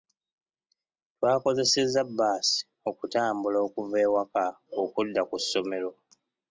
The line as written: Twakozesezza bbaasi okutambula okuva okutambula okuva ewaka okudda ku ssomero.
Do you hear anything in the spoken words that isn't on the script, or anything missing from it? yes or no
yes